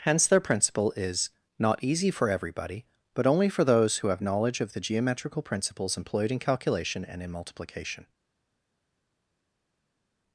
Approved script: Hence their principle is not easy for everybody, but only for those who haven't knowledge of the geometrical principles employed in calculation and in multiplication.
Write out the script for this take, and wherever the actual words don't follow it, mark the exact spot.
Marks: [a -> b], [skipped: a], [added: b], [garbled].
Hence their principle is not easy for everybody, but only for those who [haven't -> have] knowledge of the geometrical principles employed in calculation and in multiplication.